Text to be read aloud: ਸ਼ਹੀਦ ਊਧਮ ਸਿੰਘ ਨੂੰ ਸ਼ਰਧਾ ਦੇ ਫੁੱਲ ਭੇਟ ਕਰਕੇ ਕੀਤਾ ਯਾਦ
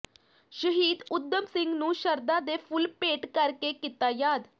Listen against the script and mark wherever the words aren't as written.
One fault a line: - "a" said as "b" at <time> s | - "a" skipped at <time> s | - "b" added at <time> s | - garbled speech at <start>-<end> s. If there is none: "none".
none